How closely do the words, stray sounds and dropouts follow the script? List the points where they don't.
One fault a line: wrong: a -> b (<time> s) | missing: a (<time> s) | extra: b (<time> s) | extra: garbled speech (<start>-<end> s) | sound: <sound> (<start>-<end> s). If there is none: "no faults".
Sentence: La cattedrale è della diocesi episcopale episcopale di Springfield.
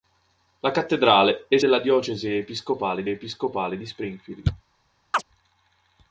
sound: chirp (5.1-5.2 s)